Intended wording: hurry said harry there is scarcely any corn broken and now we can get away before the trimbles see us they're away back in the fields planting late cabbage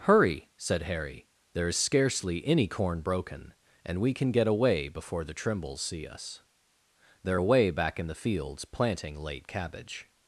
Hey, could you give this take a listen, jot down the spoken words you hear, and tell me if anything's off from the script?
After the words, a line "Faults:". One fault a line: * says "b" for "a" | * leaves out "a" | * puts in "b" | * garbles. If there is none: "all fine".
hurry said harry there is scarcely any corn broken and we can get away before the trimbles see us they're away back in the fields planting late cabbage
Faults:
* leaves out "now"